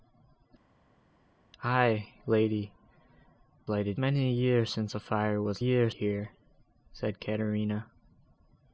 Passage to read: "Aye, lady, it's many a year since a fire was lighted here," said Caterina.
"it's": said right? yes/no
no